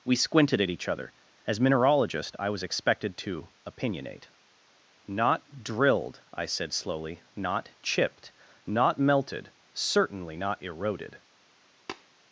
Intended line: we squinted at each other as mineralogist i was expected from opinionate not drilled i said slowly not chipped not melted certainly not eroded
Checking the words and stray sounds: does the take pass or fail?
fail